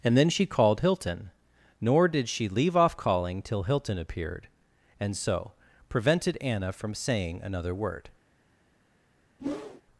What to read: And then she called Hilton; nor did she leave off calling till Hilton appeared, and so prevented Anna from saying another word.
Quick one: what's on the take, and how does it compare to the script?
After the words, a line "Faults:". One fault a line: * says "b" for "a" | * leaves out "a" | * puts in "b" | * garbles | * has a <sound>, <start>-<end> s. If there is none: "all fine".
And then she called Hilton; nor did she leave off calling till Hilton appeared, and so prevented Anna from saying another word.
Faults:
* has a whoosh, 9.4-9.8 s